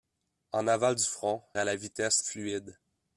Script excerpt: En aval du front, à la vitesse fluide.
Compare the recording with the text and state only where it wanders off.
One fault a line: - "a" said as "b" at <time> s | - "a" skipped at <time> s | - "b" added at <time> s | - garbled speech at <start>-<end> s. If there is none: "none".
none